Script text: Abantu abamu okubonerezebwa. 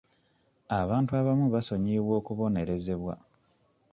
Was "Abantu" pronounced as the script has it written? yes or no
yes